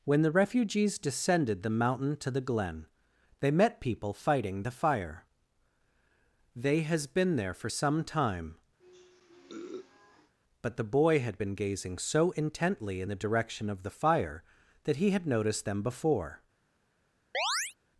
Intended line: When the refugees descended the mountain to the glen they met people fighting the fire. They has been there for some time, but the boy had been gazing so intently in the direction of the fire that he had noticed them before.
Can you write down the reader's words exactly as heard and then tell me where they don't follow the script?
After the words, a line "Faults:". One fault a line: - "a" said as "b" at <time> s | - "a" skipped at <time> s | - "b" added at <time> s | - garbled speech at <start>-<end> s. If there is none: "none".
When the refugees descended the mountain to the glen they met people fighting the fire. They has been there for some time, but the boy had been gazing so intently in the direction of the fire that he had noticed them before.
Faults:
none